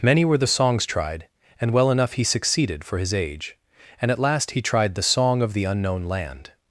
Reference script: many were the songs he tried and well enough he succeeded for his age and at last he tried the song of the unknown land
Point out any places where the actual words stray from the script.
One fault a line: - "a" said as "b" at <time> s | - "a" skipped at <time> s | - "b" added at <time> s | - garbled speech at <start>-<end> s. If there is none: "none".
- "he" skipped at 0.8 s